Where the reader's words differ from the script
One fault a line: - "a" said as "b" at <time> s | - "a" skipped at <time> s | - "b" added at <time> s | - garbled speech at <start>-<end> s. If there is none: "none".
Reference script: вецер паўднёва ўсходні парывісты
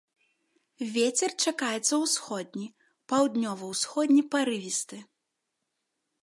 - "чакаецца ўсходні" added at 1.5 s